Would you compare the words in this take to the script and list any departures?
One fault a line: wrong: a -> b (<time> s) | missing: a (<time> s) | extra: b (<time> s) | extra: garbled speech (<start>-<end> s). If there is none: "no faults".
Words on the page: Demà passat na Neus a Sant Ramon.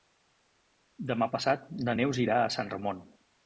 extra: irà (2.3 s)